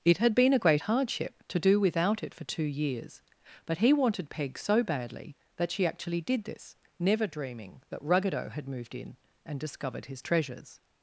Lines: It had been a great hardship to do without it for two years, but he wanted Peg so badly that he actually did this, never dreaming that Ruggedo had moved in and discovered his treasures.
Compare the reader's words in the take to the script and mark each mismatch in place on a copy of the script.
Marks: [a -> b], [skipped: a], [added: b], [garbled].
It had been a great hardship to do without it for two years, but he wanted Peg so badly that [he -> she] actually did this, never dreaming that Ruggedo had moved in and discovered his treasures.